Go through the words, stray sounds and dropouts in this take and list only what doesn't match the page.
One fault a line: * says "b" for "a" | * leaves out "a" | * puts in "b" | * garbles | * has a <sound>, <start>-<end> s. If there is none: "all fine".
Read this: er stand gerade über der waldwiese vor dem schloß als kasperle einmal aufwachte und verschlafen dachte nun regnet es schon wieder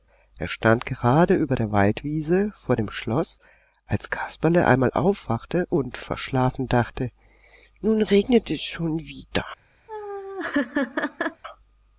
* has a laugh, 9.9-11.4 s